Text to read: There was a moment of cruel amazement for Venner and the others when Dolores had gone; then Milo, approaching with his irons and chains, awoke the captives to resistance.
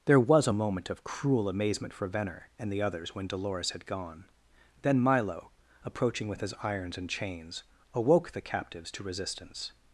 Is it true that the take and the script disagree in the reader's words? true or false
false